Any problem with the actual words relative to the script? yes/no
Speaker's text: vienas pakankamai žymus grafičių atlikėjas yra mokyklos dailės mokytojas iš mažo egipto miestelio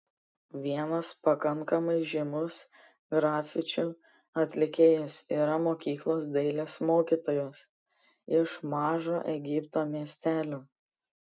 no